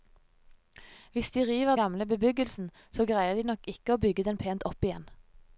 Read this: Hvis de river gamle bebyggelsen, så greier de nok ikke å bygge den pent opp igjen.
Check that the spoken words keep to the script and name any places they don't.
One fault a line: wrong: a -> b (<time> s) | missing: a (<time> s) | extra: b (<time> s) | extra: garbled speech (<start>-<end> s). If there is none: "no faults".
no faults